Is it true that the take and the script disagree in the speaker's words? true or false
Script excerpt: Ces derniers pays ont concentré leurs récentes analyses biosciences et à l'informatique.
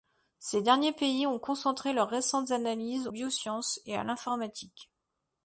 false